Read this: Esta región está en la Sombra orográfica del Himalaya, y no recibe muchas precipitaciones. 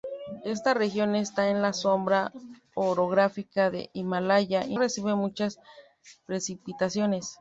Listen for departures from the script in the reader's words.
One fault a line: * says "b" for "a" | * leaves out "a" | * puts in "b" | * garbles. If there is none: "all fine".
* leaves out "no"